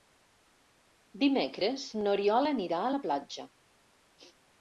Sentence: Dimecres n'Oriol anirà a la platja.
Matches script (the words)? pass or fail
pass